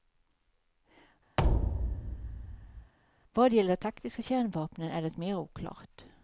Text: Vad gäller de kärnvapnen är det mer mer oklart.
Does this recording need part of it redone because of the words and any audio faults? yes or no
yes